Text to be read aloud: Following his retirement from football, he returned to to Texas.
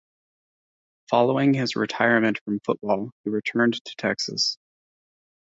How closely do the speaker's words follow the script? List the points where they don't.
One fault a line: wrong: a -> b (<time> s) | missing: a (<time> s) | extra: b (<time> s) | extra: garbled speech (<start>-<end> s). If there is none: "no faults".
missing: to (4.0 s)